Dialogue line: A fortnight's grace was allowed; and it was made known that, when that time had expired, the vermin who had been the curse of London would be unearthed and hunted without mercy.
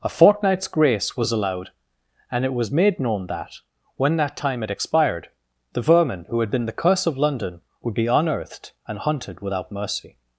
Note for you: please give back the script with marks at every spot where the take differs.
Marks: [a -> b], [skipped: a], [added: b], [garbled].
A fortnight's grace was allowed; and it was made known that, when that time had expired, the vermin who had been the curse of London would be unearthed and hunted without mercy.